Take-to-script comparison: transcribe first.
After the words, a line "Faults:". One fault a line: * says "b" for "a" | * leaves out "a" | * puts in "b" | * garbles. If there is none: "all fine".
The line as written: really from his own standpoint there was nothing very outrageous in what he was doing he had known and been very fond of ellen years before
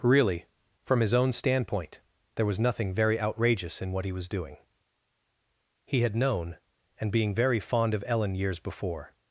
really from his own standpoint there was nothing very outrageous in what he was doing he had known and being very fond of ellen years before
Faults:
* says "being" for "been"